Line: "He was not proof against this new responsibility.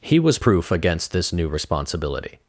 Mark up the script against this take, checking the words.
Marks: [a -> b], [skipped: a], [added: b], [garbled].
"He was [skipped: not] proof against this new responsibility.